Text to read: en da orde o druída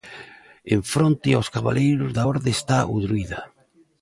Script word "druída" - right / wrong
right